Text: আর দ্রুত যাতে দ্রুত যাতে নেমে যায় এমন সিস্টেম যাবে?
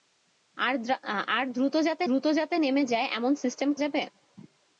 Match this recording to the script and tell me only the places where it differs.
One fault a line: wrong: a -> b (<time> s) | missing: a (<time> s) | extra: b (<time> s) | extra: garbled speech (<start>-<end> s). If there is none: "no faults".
no faults